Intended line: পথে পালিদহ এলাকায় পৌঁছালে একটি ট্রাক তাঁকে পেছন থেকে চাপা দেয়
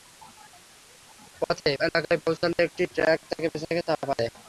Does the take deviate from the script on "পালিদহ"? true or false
true